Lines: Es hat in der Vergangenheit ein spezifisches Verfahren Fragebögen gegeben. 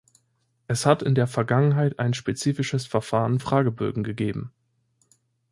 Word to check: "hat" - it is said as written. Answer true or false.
true